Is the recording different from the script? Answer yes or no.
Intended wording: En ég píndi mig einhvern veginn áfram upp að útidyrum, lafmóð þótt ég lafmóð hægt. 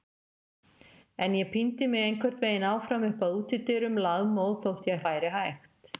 yes